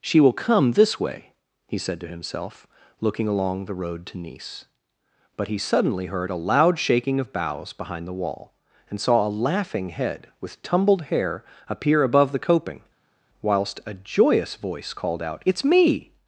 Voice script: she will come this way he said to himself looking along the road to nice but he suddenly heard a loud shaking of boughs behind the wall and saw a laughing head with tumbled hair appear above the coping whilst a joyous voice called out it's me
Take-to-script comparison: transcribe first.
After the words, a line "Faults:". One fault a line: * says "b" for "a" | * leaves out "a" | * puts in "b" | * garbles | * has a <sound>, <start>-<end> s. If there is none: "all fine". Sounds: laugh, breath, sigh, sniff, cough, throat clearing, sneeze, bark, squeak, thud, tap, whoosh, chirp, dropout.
she will come this way he said to himself looking along the road to nice but he suddenly heard a loud shaking of boughs behind the wall and saw a laughing head with tumbled hair appear above the coping whilst a joyous voice called out it's me
Faults:
all fine